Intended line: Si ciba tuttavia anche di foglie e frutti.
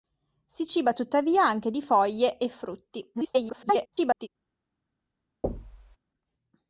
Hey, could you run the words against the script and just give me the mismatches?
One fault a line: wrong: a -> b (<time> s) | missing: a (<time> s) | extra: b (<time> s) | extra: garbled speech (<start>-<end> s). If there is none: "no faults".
extra: garbled speech (3.1-4.3 s)